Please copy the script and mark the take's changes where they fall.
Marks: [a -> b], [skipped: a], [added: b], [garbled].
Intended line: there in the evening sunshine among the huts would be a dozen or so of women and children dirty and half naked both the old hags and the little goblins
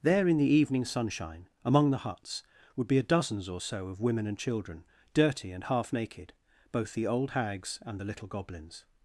there in the evening sunshine among the huts would be a [dozen -> dozens] or so of women and children dirty and half naked both the old hags and the little goblins